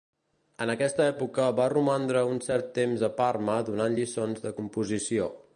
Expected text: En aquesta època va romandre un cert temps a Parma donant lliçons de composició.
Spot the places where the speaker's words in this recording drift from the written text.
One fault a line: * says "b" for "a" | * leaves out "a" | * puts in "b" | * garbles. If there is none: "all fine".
all fine